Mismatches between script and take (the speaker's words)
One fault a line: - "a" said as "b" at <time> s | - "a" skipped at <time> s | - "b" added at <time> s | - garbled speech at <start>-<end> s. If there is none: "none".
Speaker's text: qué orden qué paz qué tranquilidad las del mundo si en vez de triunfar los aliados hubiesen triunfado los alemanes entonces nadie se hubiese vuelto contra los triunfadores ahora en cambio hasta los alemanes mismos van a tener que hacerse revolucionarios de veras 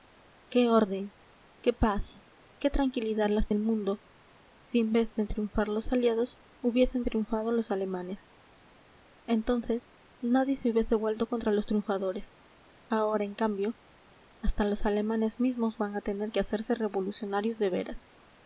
none